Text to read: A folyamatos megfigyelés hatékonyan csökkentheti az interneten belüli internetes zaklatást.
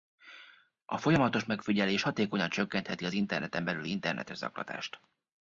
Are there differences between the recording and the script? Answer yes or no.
no